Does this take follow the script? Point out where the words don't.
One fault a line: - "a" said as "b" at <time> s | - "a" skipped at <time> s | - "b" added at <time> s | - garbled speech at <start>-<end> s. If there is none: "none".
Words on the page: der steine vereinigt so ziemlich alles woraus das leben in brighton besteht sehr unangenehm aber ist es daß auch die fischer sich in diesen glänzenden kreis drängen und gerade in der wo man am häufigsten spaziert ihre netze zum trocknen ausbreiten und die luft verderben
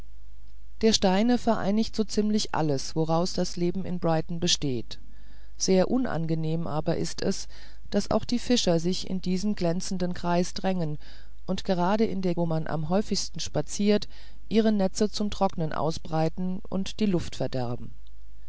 none